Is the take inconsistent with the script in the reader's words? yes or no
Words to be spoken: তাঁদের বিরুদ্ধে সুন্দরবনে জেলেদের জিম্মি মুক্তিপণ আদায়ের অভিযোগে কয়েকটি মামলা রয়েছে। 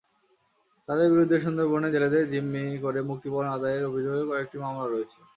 yes